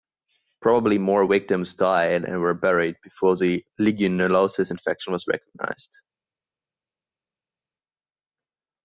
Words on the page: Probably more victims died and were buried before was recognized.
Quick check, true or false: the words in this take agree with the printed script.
false